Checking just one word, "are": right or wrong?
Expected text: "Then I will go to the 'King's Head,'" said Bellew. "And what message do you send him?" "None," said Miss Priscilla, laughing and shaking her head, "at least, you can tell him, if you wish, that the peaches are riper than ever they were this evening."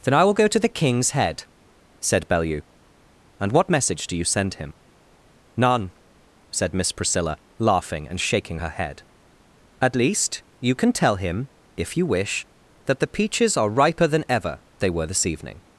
right